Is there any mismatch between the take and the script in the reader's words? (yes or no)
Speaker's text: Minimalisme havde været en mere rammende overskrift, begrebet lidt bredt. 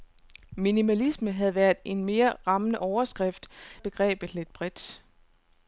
no